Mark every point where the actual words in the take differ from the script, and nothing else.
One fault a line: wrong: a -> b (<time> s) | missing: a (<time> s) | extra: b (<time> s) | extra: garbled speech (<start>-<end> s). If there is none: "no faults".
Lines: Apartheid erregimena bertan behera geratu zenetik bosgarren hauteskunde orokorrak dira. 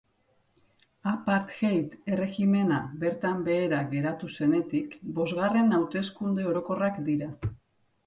no faults